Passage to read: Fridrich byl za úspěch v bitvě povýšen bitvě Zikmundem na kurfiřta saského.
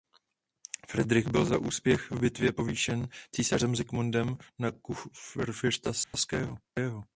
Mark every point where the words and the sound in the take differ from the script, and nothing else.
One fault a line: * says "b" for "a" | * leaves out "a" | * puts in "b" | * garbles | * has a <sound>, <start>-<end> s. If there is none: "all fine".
* says "císařem" for "bitvě"
* has a dropout, 6.0-6.1 s